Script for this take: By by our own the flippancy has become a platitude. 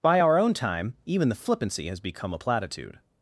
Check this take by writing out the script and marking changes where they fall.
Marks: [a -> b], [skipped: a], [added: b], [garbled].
By [skipped: by] our own [added: time even] the flippancy has become a platitude.